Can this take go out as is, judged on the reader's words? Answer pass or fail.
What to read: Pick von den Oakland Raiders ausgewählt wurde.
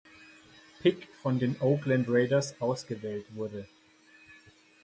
pass